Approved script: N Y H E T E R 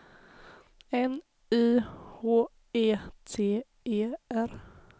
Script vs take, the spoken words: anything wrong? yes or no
no